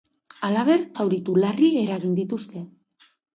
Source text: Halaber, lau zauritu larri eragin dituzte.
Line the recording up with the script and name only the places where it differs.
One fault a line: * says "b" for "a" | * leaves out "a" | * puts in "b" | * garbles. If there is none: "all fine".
* leaves out "lau"